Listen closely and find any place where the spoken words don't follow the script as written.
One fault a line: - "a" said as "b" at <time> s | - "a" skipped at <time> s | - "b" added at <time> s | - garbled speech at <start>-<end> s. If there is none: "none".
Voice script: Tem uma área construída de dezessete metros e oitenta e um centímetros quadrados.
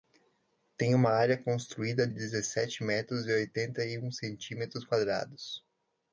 - "de" skipped at 2.1 s